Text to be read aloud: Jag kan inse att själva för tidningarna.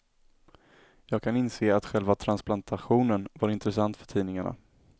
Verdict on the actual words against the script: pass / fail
fail